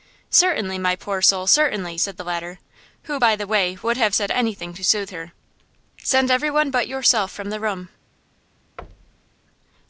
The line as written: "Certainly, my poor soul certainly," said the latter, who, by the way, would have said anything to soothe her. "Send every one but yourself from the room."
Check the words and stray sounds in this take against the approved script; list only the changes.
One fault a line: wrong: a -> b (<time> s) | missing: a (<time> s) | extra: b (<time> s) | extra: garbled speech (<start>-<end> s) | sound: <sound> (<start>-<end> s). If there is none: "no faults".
sound: thud (8.8-9.4 s)